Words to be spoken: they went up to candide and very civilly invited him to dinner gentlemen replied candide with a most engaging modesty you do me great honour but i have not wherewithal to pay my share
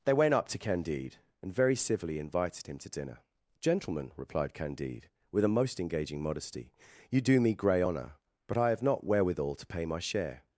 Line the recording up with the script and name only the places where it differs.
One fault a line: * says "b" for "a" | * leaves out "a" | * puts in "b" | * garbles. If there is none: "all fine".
* says "grey" for "great"